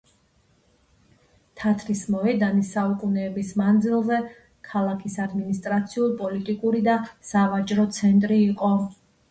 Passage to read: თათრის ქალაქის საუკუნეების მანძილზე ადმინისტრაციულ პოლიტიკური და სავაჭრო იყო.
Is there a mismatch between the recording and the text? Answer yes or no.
yes